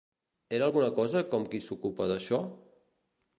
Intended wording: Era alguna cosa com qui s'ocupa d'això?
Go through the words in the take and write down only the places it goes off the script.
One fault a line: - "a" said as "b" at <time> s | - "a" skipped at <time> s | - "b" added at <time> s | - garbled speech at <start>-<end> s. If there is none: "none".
none